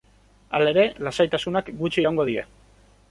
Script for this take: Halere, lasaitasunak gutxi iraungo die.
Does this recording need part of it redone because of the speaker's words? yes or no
no